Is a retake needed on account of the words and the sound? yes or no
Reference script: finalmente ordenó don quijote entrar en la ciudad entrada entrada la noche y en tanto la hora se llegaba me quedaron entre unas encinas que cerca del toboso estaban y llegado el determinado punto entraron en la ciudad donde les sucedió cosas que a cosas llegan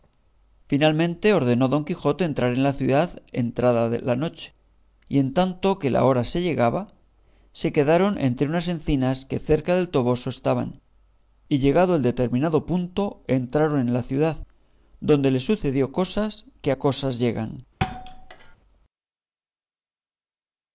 yes